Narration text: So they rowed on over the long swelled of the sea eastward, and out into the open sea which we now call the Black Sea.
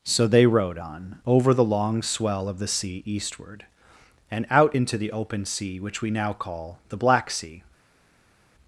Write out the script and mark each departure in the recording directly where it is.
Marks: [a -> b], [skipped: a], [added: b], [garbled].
So they rowed on over the long [swelled -> swell] of the sea eastward, and out into the open sea which we now call the Black Sea.